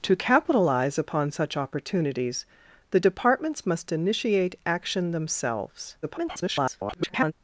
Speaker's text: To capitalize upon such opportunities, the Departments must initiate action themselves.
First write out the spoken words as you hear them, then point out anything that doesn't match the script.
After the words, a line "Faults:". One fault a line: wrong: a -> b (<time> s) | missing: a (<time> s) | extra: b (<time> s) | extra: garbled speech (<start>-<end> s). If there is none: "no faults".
To capitalize upon such opportunities, the Departments must initiate action themselves. [garbled]
Faults:
extra: garbled speech (6.0-7.3 s)